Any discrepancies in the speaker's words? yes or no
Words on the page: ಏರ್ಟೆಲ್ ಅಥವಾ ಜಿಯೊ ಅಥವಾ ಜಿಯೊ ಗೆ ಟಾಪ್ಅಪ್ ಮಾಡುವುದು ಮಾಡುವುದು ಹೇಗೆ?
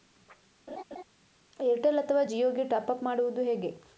yes